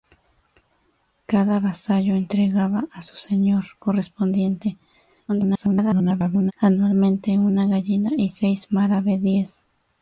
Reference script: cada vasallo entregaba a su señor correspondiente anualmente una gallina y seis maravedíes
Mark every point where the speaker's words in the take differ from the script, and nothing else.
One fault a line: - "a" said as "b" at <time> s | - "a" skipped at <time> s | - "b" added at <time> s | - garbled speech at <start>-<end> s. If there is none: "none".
- garbled speech at 5.3-6.5 s